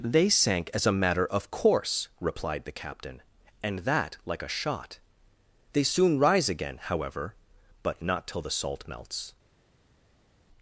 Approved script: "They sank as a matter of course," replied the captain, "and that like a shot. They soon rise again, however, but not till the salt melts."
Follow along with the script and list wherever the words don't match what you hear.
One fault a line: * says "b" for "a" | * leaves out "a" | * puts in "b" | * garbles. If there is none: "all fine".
all fine